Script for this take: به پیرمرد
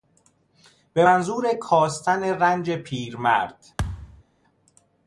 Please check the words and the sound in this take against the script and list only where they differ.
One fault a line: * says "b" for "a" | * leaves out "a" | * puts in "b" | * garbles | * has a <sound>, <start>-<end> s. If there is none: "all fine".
* puts in "منظور کاستن رنج"
* has a thud, 3.8-4.2 s